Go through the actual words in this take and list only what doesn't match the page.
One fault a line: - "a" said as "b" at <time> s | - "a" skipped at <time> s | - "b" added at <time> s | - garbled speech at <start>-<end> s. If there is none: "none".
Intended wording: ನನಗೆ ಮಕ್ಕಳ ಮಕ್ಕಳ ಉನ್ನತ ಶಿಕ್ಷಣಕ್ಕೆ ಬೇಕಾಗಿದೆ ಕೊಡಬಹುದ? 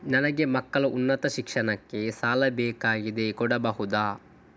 - "ಮಕ್ಕಳ" skipped at 0.8 s
- "ಸಾಲ" added at 2.1 s